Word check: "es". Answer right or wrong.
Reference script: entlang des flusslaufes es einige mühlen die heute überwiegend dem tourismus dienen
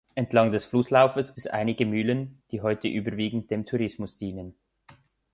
right